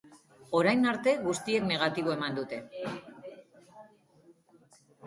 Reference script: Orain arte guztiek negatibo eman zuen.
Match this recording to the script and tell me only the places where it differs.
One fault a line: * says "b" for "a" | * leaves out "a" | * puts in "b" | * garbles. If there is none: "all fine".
* says "dute" for "zuen"